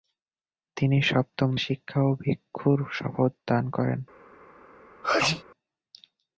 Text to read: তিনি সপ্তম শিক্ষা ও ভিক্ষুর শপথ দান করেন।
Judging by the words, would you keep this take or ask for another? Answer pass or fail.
pass